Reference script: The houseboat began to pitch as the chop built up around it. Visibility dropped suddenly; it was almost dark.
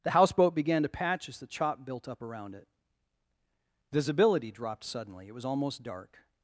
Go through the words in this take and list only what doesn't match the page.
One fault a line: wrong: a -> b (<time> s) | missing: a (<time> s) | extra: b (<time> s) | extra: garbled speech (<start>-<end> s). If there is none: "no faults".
wrong: pitch -> patch (0.9 s)